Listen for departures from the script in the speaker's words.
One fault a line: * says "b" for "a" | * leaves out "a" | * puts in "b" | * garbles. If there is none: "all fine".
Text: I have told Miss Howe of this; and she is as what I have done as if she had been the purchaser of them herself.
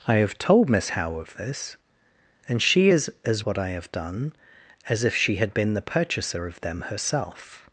all fine